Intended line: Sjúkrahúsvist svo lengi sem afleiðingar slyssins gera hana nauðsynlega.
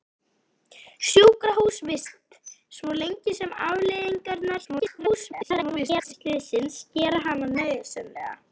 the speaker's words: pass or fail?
fail